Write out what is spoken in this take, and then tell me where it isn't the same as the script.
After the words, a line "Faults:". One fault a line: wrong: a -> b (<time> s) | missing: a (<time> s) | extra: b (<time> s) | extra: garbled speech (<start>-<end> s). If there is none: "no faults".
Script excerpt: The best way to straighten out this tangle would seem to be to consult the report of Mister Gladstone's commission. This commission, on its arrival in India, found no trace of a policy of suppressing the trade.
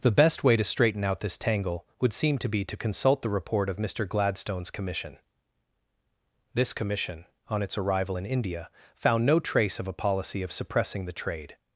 The best way to straighten out this tangle would seem to be to consult the report of Mister Gladstone's commission. This commission, on its arrival in India, found no trace of a policy of suppressing the trade.
Faults:
no faults